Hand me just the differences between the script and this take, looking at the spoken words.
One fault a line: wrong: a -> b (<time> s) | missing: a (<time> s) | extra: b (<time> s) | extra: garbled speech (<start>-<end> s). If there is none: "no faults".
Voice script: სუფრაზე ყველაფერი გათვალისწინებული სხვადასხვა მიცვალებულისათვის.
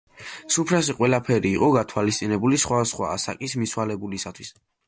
extra: იყო (1.6 s)
extra: ასაკის (3.2 s)